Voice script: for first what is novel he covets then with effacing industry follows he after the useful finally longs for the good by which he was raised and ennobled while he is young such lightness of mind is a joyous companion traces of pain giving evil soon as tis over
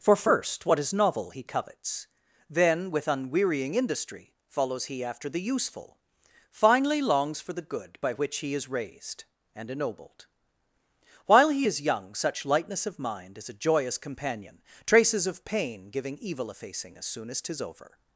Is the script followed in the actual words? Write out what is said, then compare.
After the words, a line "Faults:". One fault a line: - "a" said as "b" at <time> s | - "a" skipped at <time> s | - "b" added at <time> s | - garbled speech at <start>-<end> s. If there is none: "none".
for first what is novel he covets then with unwearying industry follows he after the useful finally longs for the good by which he is raised and ennobled while he is young such lightness of mind is a joyous companion traces of pain giving evil effacing as soon as tis over
Faults:
- "effacing" said as "unwearying" at 3.1 s
- "was" said as "is" at 8.6 s
- "effacing as" added at 16.5 s